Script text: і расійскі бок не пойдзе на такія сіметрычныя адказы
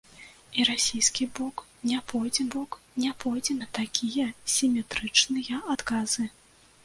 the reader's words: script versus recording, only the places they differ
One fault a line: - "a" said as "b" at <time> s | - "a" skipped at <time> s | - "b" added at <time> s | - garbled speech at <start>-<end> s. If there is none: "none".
- "бок не пойдзе" added at 2.5 s